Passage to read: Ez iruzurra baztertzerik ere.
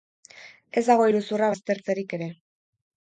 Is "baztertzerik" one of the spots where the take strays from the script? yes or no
no